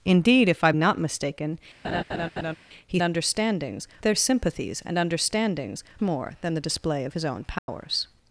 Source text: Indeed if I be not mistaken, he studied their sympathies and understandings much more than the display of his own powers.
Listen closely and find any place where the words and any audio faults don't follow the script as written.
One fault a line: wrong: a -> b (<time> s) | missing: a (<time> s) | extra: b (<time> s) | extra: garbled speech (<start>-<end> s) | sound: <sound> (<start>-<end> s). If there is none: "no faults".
missing: be (0.7 s)
sound: laugh (1.8-2.6 s)
wrong: studied -> understandings (3.0 s)
missing: much (5.8 s)
sound: dropout (7.6-7.7 s)